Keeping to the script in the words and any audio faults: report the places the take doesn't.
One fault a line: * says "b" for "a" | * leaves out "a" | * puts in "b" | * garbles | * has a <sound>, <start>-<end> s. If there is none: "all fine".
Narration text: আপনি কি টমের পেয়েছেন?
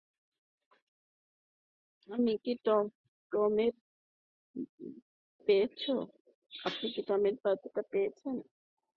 all fine